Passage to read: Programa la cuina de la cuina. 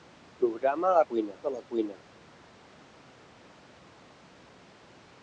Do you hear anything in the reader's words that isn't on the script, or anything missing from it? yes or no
no